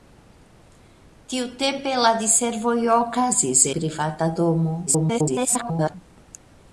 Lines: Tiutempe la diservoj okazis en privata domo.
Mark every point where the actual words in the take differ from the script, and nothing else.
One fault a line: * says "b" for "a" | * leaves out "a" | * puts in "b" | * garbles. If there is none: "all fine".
* leaves out "en"
* garbles